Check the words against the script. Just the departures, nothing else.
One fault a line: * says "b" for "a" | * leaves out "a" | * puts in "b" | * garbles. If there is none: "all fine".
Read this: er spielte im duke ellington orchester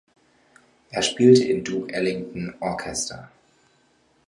all fine